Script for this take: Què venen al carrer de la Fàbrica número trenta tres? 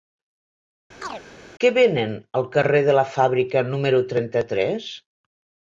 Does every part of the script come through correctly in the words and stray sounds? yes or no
no